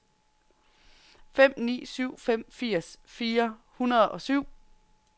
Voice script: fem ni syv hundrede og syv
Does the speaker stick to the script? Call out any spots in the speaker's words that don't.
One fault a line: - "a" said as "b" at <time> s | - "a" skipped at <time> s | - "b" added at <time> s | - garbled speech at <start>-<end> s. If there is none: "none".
- "fem firs fire" added at 2.2 s